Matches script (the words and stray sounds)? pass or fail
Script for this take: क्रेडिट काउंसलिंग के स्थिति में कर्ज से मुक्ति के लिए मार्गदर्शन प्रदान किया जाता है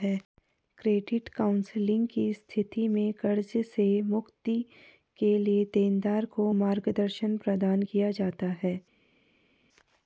fail